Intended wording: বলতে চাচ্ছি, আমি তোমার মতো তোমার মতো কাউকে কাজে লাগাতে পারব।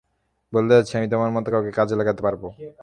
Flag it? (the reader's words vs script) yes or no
yes